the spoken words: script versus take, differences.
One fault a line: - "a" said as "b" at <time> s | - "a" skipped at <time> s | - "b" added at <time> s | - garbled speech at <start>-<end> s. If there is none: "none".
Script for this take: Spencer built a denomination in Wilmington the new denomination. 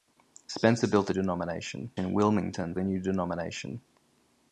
none